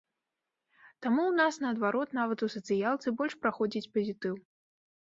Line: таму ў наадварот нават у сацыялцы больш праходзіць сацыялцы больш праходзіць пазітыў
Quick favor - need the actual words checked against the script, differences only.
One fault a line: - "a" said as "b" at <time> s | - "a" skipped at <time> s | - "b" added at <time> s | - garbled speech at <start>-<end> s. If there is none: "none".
- "нас" added at 1.4 s
- "сацыялцы больш праходзіць" skipped at 3.9 s